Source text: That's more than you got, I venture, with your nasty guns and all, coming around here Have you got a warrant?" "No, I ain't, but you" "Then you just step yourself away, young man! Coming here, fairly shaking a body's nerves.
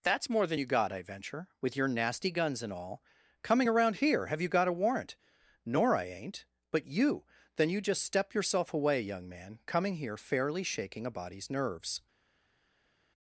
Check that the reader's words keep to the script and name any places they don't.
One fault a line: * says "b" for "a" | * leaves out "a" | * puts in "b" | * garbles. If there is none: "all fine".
* says "Nor" for "No"